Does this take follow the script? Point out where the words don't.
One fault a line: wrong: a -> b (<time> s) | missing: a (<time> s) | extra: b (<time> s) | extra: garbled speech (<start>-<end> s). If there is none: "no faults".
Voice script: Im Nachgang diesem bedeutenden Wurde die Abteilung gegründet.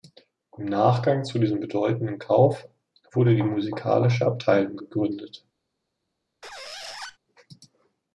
extra: zu (1.2 s)
extra: Kauf (2.2 s)
extra: Musikalische (3.4 s)